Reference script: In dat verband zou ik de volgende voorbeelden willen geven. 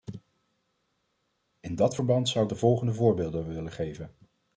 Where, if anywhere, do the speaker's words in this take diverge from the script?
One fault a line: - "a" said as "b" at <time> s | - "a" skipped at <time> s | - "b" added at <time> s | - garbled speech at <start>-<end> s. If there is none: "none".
none